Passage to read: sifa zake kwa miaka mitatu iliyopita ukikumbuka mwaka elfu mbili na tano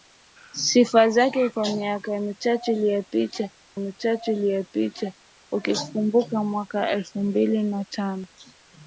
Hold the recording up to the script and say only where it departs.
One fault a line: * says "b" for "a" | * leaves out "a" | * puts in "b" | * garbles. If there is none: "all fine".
* puts in "mitatu iliyopita"